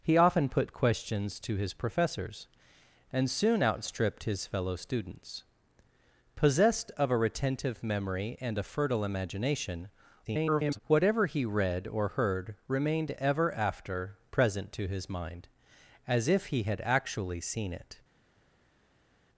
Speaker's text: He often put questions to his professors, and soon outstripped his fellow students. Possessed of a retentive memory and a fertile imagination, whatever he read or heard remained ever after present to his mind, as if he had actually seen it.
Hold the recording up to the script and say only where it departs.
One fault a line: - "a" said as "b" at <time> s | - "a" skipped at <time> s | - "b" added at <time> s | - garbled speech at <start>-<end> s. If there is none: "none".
- garbled speech at 10.2-10.8 s